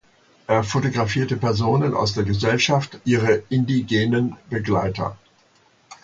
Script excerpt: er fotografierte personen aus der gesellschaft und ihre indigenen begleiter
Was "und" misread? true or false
true